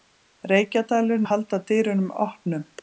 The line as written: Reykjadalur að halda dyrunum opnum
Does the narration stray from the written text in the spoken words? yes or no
no